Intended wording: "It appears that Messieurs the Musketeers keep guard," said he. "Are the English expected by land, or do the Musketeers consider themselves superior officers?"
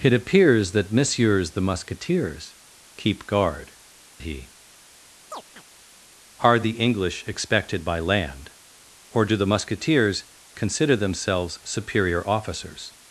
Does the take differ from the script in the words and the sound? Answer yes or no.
yes